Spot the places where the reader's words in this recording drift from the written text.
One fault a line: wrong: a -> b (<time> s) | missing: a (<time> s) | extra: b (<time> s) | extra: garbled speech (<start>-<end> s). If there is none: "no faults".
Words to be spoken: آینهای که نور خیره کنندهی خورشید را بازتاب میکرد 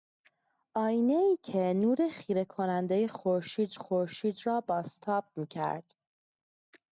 extra: خورشید (3.7 s)